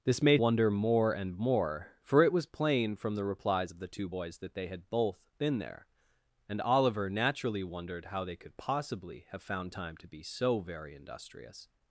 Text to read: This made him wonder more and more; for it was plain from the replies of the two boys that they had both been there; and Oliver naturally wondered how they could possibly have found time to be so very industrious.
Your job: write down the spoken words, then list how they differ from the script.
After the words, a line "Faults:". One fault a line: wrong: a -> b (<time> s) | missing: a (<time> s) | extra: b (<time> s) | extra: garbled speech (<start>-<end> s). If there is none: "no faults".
This made wonder more and more; for it was plain from the replies of the two boys that they had both been there; and Oliver naturally wondered how they could possibly have found time to be so very industrious.
Faults:
missing: him (0.4 s)